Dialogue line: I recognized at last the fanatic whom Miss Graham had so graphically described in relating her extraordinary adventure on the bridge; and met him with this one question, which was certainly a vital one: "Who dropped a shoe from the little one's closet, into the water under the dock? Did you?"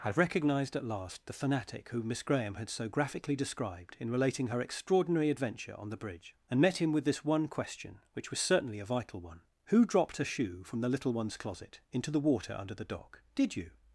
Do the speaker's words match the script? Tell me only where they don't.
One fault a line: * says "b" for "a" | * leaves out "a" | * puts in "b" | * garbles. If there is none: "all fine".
* says "had recognised" for "I recognized"